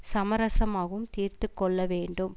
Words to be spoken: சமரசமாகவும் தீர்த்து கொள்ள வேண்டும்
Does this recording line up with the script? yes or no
yes